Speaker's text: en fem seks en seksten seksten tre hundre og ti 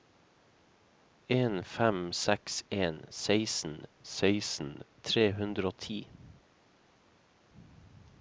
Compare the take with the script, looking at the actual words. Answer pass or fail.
pass